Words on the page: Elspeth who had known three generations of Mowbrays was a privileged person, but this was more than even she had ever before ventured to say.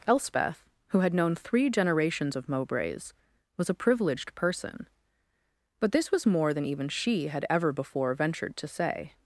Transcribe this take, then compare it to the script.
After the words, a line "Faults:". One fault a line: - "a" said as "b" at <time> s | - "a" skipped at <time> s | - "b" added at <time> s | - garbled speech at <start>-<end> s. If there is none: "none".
Elspeth who had known three generations of Mowbrays was a privileged person, but this was more than even she had ever before ventured to say.
Faults:
none